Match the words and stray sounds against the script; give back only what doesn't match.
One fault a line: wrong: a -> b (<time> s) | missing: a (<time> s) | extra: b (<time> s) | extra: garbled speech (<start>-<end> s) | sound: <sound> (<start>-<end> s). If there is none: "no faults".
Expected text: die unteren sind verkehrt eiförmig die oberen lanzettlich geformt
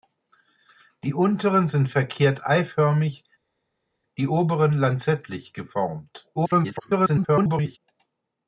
extra: garbled speech (6.4-7.8 s)